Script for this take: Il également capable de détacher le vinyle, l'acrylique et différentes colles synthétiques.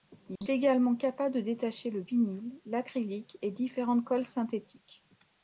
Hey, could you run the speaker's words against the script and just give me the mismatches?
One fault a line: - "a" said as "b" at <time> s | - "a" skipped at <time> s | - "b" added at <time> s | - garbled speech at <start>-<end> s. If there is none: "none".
none